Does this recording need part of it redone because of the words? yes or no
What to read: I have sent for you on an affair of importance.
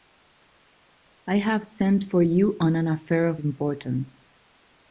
no